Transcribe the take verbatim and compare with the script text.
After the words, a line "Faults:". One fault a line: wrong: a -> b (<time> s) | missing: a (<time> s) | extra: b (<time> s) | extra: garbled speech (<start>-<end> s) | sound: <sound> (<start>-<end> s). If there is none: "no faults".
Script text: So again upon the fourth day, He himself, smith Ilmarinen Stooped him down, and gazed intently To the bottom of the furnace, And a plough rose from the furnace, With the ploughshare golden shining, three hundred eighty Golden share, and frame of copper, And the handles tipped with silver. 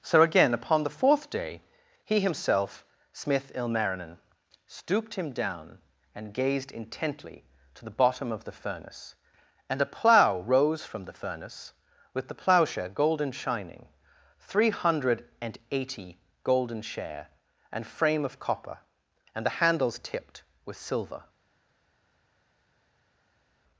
So again upon the fourth day, He himself, smith Ilmarinen Stooped him down, and gazed intently To the bottom of the furnace, And a plough rose from the furnace, With the ploughshare golden shining, three hundred and eighty Golden share, and frame of copper, And the handles tipped with silver.
Faults:
extra: and (15.4 s)